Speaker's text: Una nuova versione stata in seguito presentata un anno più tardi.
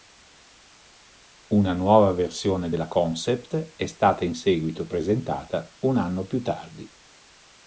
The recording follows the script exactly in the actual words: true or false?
false